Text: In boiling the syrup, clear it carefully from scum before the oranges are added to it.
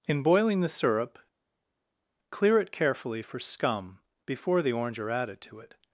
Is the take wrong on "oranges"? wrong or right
wrong